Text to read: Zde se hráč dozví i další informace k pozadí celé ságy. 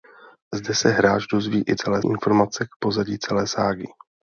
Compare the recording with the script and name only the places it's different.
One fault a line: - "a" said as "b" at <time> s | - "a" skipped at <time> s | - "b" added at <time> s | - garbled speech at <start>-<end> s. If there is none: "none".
- "další" said as "celé" at 1.7 s